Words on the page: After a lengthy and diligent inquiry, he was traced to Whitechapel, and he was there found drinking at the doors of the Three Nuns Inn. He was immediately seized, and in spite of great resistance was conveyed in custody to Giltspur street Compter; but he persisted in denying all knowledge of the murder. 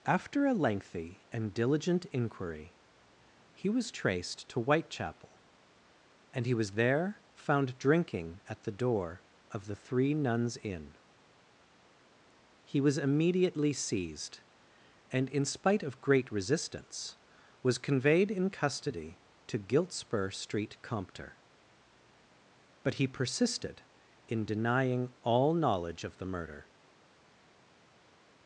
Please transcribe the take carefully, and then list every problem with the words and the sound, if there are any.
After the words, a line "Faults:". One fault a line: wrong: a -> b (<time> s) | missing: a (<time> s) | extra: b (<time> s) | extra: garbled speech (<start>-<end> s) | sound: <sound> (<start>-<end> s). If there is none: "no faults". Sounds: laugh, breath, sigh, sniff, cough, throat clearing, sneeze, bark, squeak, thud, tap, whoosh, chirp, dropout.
After a lengthy and diligent inquiry, he was traced to Whitechapel, and he was there found drinking at the door of the Three Nuns Inn. He was immediately seized, and in spite of great resistance was conveyed in custody to Giltspur street Compter; but he persisted in denying all knowledge of the murder.
Faults:
wrong: doors -> door (8.7 s)